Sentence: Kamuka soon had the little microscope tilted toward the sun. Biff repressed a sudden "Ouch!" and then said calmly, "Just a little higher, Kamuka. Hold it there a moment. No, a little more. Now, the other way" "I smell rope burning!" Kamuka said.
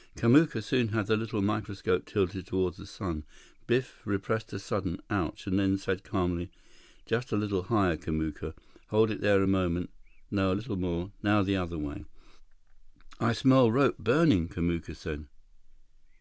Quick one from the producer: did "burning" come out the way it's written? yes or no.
yes